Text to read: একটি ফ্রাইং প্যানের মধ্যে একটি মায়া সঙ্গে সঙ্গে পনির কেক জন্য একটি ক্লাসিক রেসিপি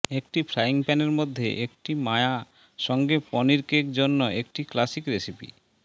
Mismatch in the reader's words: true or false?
true